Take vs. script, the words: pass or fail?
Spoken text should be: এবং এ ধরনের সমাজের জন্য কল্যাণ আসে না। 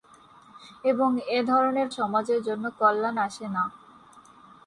pass